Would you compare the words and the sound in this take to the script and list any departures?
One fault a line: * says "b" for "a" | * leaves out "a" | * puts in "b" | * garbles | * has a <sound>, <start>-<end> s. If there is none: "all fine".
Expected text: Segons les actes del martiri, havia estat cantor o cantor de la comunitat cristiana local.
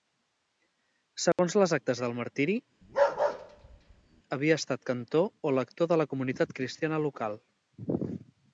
* has a dropout, 1.3-1.4 s
* has a bark, 2.8-4.2 s
* says "lector" for "cantor"